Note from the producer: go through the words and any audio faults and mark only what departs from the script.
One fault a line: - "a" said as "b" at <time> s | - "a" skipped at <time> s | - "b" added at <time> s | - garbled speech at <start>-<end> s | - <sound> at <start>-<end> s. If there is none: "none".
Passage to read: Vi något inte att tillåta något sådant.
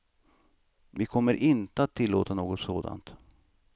- "något" said as "kommer" at 1.1 s